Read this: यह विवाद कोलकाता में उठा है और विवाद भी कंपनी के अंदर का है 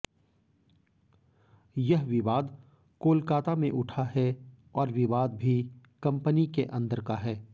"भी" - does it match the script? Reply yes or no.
yes